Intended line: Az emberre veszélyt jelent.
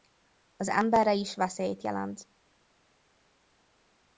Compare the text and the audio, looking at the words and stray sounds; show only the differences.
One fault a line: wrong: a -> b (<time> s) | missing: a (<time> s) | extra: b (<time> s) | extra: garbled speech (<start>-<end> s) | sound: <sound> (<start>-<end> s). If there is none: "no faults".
extra: is (1.1 s)